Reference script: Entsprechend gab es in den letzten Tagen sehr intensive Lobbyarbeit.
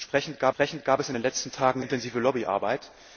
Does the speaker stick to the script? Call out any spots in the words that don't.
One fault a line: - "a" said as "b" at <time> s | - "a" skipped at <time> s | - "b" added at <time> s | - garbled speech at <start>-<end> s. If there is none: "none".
- "entsprechend gab" added at 0.5 s
- "sehr" skipped at 1.8 s